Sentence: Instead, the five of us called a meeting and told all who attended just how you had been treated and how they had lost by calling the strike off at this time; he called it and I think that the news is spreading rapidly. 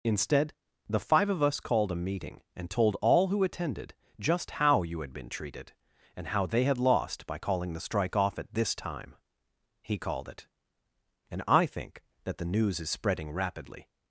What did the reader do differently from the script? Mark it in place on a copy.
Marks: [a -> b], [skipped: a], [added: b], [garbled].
Instead, the five of us called a meeting and told all who attended just how you had been treated and how they had lost by calling the strike off at this time; he called it and I think that the news is spreading rapidly.